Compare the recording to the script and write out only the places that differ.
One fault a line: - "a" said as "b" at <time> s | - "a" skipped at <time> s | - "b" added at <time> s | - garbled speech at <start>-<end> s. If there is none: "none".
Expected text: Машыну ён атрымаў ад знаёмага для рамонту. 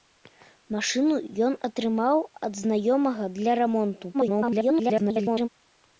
- garbled speech at 4.1-5.5 s